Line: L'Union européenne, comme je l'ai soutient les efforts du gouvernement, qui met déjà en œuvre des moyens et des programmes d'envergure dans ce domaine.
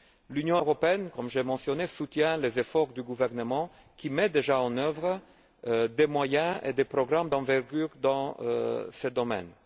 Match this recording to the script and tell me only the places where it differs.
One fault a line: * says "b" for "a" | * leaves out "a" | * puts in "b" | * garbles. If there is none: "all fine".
* puts in "mentionné"